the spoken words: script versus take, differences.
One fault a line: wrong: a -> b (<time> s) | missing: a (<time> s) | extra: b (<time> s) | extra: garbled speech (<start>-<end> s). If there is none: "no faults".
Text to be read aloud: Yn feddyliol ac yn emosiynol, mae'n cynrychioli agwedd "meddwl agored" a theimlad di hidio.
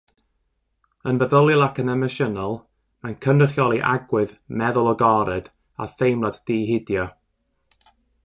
no faults